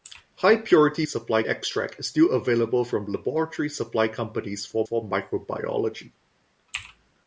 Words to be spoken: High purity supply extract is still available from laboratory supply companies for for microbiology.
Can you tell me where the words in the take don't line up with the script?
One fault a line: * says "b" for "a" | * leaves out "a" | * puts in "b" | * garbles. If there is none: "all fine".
all fine